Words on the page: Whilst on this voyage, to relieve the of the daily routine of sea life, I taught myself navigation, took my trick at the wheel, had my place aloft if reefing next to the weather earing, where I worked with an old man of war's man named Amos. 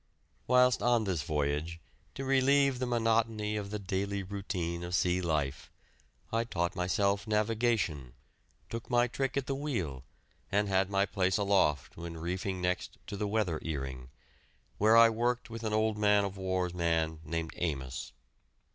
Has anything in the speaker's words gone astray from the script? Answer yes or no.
yes